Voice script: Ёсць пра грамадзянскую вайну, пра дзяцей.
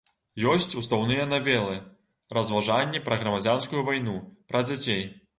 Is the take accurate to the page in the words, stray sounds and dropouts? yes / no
no